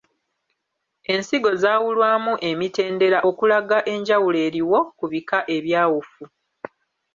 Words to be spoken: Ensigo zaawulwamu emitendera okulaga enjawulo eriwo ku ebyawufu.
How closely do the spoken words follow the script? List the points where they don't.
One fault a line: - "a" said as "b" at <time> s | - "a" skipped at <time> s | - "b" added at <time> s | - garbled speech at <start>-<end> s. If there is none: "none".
- "bika" added at 5.1 s